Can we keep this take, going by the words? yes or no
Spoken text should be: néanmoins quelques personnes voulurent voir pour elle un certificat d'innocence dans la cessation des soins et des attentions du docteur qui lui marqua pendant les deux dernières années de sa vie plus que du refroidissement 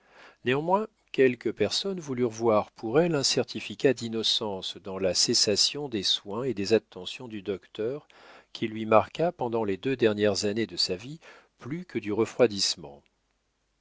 yes